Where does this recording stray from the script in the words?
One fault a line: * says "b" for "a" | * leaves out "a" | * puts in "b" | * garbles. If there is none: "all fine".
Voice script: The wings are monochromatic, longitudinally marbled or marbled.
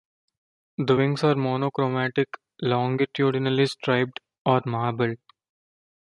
* says "striped" for "marbled"